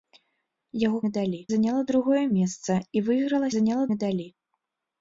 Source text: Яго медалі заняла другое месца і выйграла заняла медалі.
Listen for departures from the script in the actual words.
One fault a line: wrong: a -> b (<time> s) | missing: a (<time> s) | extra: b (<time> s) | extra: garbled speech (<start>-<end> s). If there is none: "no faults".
no faults